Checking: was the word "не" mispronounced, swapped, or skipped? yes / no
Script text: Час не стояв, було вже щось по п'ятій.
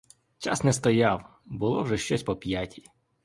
no